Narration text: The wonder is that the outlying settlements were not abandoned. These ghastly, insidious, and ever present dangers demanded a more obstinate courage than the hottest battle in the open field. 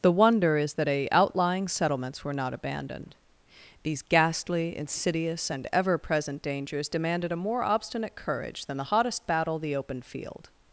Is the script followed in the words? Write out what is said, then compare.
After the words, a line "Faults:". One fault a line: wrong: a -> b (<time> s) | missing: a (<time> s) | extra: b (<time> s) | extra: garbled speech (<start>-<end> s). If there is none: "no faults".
The wonder is that a outlying settlements were not abandoned. These ghastly, insidious, and ever present dangers demanded a more obstinate courage than the hottest battle the open field.
Faults:
wrong: the -> a (0.9 s)
missing: in (9.6 s)